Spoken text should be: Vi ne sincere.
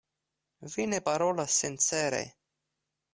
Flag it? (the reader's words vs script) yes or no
yes